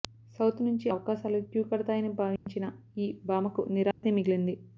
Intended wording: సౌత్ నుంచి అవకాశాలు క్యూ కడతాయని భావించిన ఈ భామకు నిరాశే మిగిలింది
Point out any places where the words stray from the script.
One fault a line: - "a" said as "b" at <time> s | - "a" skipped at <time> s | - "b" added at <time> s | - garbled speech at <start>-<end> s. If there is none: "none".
none